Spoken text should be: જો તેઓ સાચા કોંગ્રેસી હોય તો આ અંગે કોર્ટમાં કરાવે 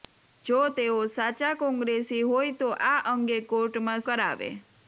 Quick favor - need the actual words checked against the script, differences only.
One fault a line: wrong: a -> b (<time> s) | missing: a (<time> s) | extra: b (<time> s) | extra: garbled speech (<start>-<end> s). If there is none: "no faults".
no faults